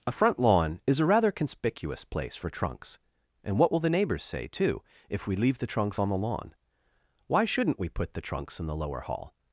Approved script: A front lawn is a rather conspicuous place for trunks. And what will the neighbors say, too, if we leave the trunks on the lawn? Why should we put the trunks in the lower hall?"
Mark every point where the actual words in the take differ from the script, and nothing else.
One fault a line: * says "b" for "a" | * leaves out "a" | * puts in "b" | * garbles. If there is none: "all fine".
* says "shouldn't" for "should"